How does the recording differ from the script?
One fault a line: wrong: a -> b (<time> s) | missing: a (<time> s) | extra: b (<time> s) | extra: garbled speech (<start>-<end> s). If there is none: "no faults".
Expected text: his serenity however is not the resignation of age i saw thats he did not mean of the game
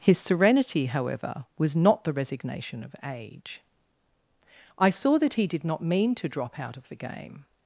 wrong: is -> was (1.6 s)
wrong: thats -> that (5.2 s)
extra: to drop out (6.2 s)